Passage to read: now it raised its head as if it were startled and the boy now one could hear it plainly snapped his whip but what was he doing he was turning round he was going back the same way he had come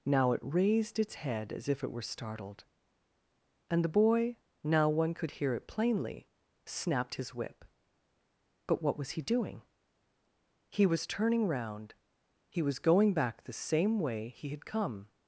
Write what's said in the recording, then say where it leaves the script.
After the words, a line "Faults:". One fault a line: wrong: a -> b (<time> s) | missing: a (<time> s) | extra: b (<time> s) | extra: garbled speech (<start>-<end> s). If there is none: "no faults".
now it raised its head as if it were startled and the boy now one could hear it plainly snapped his whip but what was he doing he was turning round he was going back the same way he had come
Faults:
no faults